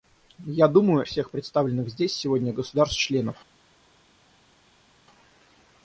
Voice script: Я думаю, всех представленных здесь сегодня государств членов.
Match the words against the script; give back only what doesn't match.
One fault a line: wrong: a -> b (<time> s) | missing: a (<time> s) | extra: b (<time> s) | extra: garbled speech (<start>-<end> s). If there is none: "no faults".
no faults